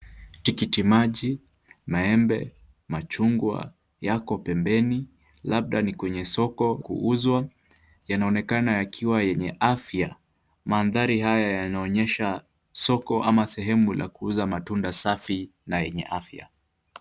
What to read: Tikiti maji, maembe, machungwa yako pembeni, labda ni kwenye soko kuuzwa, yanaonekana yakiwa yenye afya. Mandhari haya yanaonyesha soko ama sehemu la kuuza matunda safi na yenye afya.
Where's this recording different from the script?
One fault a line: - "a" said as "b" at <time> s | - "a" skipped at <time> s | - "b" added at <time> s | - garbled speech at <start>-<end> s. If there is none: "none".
none